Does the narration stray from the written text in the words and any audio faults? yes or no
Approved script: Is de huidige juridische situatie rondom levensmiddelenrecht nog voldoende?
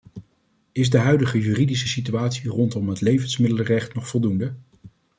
yes